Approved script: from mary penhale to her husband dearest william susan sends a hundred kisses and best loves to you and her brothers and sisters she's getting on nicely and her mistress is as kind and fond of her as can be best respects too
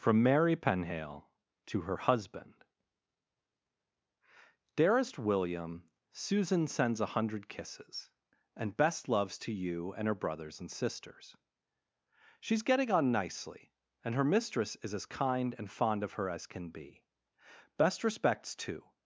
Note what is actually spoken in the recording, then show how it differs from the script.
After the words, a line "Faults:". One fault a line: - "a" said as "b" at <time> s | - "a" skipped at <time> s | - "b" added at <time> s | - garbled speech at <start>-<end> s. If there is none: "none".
from mary penhale to her husband dearest william susan sends a hundred kisses and best loves to you and her brothers and sisters she's getting on nicely and her mistress is as kind and fond of her as can be best respects too
Faults:
none